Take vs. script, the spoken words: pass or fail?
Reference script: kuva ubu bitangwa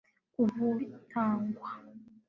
pass